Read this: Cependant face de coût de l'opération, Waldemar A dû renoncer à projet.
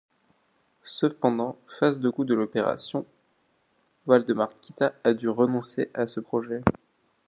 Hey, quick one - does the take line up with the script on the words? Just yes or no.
no